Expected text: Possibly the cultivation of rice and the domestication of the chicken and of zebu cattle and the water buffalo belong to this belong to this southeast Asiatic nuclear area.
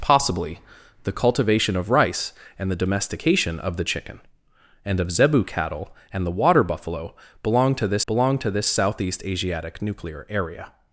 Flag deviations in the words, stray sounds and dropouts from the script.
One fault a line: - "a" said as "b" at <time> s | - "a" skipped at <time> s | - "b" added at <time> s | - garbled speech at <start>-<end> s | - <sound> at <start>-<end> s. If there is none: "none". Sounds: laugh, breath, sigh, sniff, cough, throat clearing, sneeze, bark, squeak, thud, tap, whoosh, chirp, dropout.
none